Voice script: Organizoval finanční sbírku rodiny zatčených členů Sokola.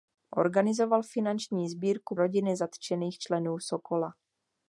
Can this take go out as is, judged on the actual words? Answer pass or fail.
pass